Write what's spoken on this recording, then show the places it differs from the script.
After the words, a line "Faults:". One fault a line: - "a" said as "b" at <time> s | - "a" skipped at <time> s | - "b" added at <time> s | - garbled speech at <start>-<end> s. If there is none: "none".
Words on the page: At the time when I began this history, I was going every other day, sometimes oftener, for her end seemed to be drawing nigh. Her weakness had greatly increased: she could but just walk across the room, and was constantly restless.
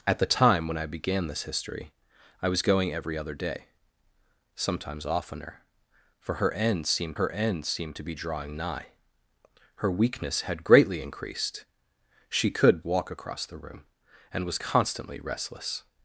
At the time when I began this history, I was going every other day, sometimes oftener, for her end seemed her end seemed to be drawing nigh. Her weakness had greatly increased: she could walk across the room, and was constantly restless.
Faults:
- "her end seemed" added at 7.1 s
- "but just" skipped at 12.8 s